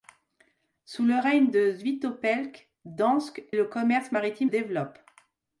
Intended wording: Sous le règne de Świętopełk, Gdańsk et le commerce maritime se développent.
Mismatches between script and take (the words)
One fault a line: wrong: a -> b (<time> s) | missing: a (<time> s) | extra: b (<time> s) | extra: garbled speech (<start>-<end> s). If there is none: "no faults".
missing: et (3.4 s)
missing: se (4.5 s)